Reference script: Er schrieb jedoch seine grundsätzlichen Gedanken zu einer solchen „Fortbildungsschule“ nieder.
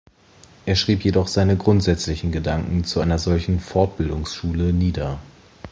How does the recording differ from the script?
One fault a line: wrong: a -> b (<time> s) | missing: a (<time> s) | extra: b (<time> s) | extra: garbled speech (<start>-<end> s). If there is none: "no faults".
no faults